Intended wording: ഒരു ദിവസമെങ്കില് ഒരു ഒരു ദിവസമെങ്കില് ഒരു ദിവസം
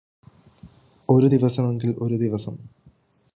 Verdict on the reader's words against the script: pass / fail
fail